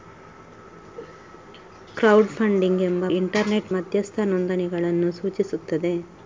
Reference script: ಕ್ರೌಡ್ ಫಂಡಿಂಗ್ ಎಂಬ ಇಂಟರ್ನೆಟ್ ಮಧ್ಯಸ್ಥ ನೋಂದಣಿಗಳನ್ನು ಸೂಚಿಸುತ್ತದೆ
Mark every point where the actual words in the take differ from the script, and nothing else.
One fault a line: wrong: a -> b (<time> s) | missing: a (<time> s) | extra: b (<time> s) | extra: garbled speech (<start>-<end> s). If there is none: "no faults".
no faults